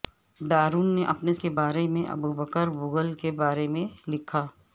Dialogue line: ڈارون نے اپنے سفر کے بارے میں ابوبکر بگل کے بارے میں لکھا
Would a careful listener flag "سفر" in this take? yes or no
yes